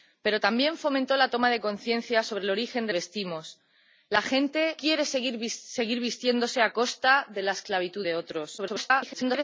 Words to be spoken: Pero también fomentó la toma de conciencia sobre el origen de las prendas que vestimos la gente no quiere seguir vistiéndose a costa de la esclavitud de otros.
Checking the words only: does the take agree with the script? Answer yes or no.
no